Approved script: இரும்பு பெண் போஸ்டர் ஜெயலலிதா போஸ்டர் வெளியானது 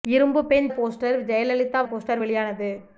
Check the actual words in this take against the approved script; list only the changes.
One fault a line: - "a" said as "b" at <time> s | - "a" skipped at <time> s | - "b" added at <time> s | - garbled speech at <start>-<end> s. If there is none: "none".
none